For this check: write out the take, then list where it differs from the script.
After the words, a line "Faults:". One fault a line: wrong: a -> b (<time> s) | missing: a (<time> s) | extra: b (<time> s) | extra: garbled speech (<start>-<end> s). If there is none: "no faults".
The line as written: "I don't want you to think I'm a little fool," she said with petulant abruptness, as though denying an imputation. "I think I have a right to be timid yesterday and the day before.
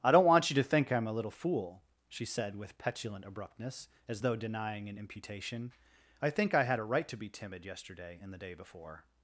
"I don't want you to think I'm a little fool," she said with petulant abruptness, as though denying an imputation. "I think I had a right to be timid yesterday and the day before.
Faults:
wrong: have -> had (6.6 s)